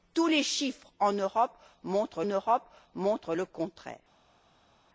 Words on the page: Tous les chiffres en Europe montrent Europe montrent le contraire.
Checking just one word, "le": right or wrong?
right